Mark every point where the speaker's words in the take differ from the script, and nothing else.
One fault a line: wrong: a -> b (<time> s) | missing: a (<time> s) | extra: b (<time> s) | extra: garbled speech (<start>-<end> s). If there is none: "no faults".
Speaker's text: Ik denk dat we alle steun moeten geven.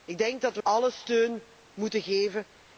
no faults